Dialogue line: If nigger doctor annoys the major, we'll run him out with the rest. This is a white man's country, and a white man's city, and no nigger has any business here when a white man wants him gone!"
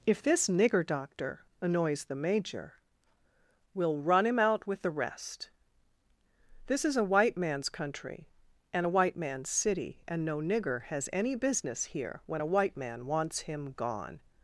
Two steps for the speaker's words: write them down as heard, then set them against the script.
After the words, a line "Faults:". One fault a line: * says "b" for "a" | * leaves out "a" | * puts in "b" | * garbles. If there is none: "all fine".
If this nigger doctor annoys the major, we'll run him out with the rest. This is a white man's country, and a white man's city, and no nigger has any business here when a white man wants him gone!"
Faults:
* puts in "this"